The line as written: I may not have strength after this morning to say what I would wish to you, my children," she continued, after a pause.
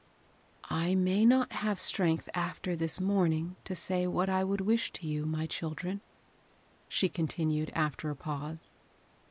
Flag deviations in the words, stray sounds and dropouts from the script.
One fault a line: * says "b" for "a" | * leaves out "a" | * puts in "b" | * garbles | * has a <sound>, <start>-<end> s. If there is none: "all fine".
all fine